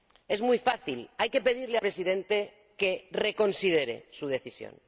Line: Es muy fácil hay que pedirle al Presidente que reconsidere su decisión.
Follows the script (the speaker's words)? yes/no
no